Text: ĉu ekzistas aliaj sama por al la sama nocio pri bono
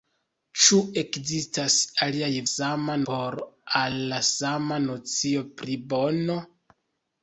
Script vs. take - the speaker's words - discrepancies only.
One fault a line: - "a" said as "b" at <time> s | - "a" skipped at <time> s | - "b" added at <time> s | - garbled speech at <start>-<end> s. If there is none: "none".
none